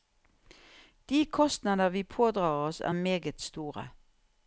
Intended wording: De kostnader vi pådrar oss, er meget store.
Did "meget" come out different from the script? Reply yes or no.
no